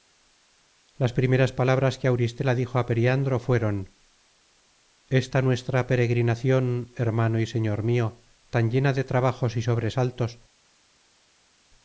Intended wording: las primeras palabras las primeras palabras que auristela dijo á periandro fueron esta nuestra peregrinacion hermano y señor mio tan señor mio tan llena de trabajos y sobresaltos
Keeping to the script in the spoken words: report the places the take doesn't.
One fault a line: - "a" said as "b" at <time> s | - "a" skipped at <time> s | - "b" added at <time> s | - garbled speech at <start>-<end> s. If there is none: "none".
- "las primeras palabras" skipped at 2.0 s
- "señor mio tan" skipped at 8.7 s